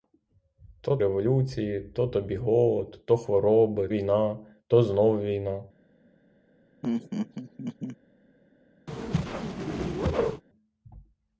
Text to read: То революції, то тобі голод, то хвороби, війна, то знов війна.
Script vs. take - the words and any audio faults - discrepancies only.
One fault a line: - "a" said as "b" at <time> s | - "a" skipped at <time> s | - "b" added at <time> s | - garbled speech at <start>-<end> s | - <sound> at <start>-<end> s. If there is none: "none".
- laugh at 6.8-8.0 s
- whoosh at 8.9-10.4 s